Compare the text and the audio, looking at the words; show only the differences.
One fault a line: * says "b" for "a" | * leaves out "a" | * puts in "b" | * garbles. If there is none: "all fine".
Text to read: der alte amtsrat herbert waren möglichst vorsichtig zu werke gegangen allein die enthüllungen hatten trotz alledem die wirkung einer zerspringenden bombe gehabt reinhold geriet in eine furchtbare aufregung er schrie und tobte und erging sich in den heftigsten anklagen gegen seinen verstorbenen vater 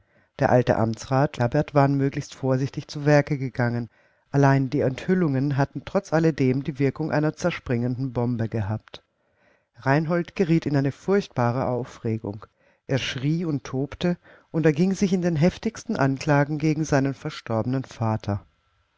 all fine